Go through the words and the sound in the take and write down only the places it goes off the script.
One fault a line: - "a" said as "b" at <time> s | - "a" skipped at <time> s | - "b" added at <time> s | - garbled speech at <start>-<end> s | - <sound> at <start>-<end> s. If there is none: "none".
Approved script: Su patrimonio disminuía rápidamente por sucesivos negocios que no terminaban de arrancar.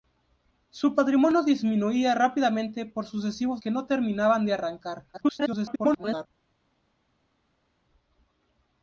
- "negocios" skipped at 3.6 s
- garbled speech at 5.1-6.3 s